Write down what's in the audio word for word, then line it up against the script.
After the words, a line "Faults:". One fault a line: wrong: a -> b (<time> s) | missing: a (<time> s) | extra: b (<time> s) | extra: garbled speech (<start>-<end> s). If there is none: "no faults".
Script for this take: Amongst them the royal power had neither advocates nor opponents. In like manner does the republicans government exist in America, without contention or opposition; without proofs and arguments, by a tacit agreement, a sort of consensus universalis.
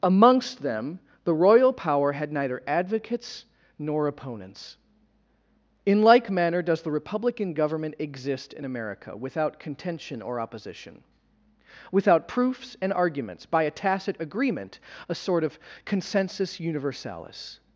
Amongst them the royal power had neither advocates nor opponents. In like manner does the republican government exist in America, without contention or opposition; without proofs and arguments, by a tacit agreement, a sort of consensus universalis.
Faults:
wrong: republicans -> republican (6.9 s)